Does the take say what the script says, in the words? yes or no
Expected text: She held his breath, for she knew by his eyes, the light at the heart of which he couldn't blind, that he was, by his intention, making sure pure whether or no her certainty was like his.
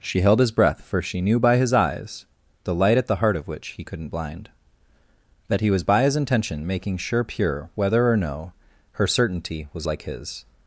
yes